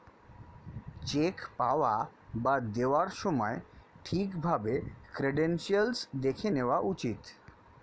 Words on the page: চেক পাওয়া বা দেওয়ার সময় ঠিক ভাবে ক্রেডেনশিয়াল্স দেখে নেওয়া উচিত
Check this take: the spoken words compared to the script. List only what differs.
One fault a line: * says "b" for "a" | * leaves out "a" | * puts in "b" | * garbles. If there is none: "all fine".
all fine